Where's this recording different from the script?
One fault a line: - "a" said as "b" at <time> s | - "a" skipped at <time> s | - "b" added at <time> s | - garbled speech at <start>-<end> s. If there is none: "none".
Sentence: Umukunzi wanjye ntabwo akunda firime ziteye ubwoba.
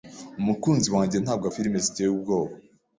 - "akunda" skipped at 1.4 s